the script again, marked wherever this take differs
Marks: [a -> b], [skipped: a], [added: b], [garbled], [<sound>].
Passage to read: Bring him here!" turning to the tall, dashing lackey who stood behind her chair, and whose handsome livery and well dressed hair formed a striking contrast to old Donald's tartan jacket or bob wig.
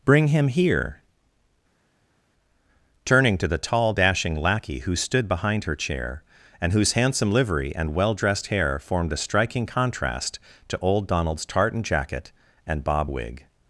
Bring him here!" turning to the tall, dashing lackey who stood behind her chair, and whose handsome livery and well dressed hair formed a striking contrast to old Donald's tartan jacket [or -> and] bob wig.